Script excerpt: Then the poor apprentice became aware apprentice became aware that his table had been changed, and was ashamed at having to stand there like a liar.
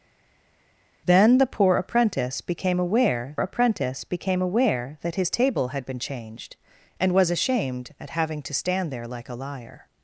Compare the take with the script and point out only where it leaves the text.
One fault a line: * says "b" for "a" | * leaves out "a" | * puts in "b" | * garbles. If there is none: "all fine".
all fine